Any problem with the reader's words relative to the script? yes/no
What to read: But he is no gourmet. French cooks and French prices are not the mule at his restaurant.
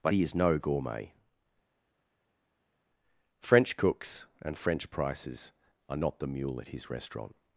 no